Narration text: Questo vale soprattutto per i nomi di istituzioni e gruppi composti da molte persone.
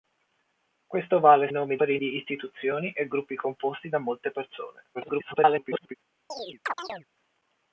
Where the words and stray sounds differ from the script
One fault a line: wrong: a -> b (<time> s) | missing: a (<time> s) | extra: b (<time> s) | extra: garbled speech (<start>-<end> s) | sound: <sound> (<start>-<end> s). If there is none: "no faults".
wrong: soprattutto -> nomi (1.5 s)
missing: nomi (2.0 s)
extra: garbled speech (4.9-5.9 s)
sound: chirp (6.3-7.1 s)